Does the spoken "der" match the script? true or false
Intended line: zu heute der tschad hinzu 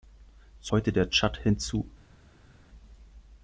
true